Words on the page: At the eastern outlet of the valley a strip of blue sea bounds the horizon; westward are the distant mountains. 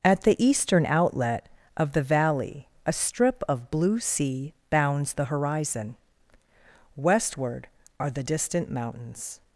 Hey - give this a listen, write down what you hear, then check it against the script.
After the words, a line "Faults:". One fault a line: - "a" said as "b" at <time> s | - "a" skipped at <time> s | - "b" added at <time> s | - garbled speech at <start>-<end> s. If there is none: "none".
At the eastern outlet of the valley a strip of blue sea bounds the horizon; westward are the distant mountains.
Faults:
none